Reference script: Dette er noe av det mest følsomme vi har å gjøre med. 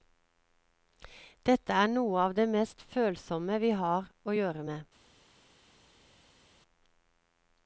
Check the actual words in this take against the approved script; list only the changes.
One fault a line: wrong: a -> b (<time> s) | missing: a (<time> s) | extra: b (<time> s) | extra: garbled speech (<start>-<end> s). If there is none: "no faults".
no faults